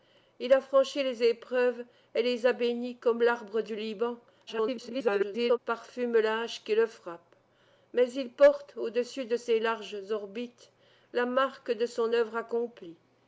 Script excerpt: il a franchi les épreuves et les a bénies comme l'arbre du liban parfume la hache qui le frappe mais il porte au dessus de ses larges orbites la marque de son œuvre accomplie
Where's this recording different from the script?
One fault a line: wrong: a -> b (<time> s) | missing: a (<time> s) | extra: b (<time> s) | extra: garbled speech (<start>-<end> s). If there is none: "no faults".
extra: garbled speech (4.5-5.6 s)